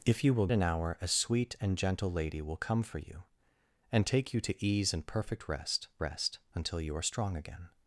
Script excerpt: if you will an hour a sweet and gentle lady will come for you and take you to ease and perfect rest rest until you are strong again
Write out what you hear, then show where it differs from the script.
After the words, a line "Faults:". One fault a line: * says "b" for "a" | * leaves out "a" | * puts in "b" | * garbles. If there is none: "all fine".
if you will an hour a sweet and gentle lady will come for you and take you to ease and perfect rest rest until you are strong again
Faults:
all fine